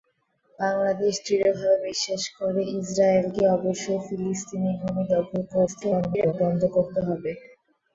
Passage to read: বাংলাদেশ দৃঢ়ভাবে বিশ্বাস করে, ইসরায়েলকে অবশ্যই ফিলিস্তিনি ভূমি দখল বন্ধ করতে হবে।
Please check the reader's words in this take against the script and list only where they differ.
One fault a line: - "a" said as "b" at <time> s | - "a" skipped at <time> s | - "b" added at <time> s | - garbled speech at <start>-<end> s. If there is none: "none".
- garbled speech at 5.7-6.3 s